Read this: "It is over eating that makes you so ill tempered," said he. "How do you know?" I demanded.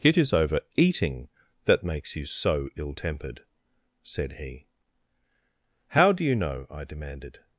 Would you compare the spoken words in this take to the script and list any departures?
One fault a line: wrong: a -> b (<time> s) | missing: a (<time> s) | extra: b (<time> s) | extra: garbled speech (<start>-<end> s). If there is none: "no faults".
no faults